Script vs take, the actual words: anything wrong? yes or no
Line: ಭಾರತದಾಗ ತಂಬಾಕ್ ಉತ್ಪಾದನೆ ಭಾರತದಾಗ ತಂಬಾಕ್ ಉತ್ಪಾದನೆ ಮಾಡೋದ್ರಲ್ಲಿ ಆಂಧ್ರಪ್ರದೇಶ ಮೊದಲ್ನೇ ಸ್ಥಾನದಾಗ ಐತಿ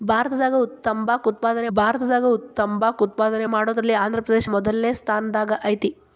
no